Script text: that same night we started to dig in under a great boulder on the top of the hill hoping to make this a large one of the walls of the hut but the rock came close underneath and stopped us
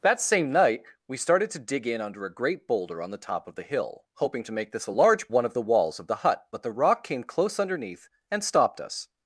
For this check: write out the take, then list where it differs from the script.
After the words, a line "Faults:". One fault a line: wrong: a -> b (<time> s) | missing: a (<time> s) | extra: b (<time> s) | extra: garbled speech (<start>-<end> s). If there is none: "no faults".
that same night we started to dig in under a great boulder on the top of the hill hoping to make this a large one of the walls of the hut but the rock came close underneath and stopped us
Faults:
no faults